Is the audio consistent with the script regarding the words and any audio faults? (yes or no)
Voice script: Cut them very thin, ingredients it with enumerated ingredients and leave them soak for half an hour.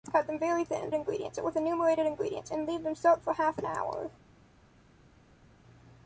yes